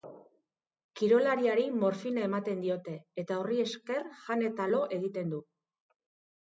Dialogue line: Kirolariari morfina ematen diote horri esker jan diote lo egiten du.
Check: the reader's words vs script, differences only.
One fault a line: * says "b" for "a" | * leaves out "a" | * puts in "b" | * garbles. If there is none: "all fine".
* puts in "eta"
* says "eta" for "diote"